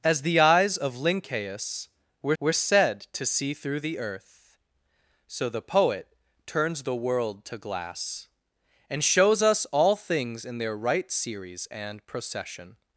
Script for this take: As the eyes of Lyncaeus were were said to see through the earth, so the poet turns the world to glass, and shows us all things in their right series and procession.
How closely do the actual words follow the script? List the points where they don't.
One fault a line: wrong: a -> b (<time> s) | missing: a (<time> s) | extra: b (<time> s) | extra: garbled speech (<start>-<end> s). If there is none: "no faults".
no faults